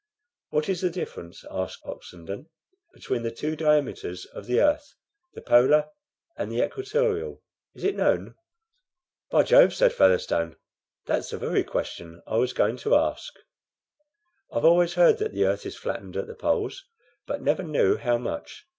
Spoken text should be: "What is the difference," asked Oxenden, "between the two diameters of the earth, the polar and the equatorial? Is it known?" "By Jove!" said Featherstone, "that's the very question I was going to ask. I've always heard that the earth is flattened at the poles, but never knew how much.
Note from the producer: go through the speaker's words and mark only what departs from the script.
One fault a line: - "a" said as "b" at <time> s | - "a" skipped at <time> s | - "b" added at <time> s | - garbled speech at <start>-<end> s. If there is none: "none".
none